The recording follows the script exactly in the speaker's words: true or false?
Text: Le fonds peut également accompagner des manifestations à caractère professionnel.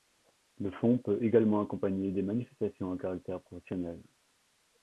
true